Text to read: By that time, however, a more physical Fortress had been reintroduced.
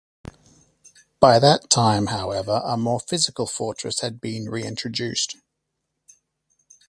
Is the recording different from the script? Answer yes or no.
no